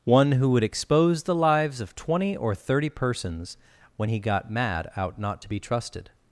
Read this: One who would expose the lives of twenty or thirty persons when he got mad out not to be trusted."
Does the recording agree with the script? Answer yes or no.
yes